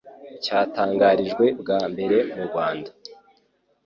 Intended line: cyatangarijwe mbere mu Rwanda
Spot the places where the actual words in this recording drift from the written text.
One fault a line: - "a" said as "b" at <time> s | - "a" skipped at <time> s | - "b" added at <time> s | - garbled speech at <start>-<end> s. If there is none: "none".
- "bwa" added at 1.6 s